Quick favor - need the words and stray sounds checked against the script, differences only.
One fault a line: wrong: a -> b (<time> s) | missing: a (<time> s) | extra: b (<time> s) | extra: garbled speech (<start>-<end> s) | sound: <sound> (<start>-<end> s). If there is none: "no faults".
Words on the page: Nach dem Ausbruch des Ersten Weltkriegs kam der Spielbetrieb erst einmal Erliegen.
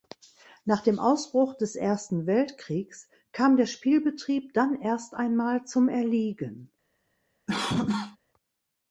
extra: dann (4.5 s)
extra: zum (5.7 s)
sound: cough (7.5-8.2 s)